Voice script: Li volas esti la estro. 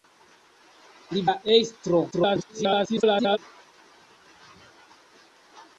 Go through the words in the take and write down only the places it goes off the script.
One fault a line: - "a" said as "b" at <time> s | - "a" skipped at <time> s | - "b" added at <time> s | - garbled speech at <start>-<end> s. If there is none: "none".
- "volas esti" skipped at 1.2 s
- garbled speech at 2.1-3.4 s